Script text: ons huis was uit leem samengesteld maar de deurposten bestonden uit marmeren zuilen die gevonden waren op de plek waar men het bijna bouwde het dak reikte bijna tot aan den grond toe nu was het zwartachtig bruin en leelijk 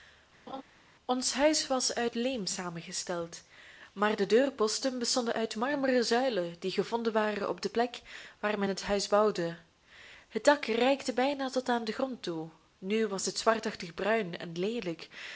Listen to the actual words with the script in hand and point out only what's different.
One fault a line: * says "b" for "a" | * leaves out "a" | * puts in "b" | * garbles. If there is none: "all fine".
* says "huis" for "bijna"